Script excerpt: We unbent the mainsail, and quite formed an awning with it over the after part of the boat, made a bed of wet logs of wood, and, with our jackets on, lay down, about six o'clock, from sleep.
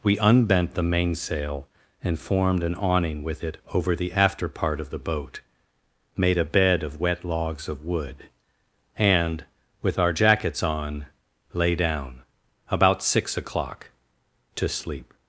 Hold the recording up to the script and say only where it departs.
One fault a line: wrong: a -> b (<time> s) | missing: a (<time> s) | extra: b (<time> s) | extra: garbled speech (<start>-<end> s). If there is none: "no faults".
missing: quite (2.2 s)
wrong: from -> to (14.6 s)